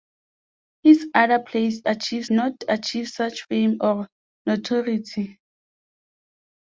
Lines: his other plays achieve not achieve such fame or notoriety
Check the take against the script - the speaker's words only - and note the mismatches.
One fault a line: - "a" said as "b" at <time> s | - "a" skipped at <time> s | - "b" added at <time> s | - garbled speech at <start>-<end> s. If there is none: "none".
none